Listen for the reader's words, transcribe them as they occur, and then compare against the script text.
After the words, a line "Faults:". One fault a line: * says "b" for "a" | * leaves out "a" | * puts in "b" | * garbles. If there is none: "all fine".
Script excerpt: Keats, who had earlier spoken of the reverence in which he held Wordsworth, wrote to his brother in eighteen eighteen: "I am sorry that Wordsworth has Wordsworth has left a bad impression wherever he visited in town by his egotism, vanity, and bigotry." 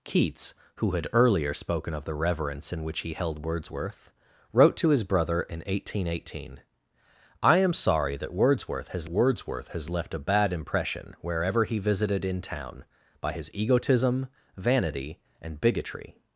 Keats, who had earlier spoken of the reverence in which he held Wordsworth, wrote to his brother in eighteen eighteen: "I am sorry that Wordsworth has Wordsworth has left a bad impression wherever he visited in town by his egotism, vanity, and bigotry."
Faults:
all fine